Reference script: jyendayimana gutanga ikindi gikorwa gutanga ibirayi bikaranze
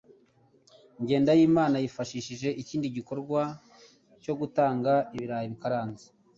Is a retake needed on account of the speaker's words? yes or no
yes